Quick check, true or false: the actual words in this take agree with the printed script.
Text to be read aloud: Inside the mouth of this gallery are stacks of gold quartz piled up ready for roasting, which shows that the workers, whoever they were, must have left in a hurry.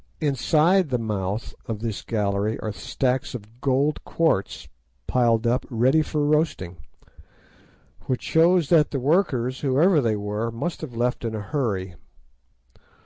true